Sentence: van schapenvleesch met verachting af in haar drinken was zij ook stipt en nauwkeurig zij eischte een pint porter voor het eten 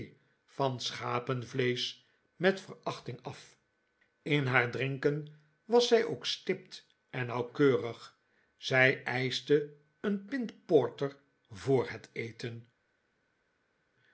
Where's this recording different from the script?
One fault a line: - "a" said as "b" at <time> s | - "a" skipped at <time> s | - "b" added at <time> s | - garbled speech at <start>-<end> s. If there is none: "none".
none